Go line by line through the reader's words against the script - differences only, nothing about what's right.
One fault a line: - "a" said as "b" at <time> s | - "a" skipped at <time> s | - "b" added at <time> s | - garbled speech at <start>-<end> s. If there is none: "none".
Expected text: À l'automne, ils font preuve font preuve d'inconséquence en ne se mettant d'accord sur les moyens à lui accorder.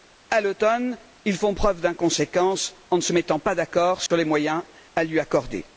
- "font preuve" skipped at 1.8 s
- "pas" added at 3.4 s